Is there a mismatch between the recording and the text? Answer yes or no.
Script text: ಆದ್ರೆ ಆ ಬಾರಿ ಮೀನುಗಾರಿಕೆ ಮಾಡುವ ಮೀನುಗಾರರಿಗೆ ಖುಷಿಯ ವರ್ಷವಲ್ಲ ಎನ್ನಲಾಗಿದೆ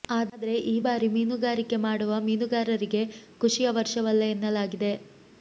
yes